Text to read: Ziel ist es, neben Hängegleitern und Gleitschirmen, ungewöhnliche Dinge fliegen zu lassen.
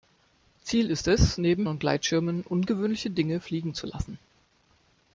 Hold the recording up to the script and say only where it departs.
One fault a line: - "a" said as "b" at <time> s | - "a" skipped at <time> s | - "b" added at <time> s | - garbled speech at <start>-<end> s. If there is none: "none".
- "Hängegleitern" skipped at 1.6 s